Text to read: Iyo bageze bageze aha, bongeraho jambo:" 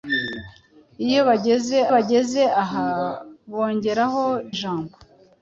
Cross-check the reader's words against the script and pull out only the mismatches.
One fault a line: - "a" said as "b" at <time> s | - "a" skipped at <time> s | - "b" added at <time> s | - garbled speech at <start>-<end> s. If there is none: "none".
none